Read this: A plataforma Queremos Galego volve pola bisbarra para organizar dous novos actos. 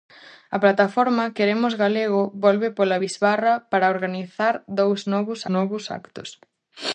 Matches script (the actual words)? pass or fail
fail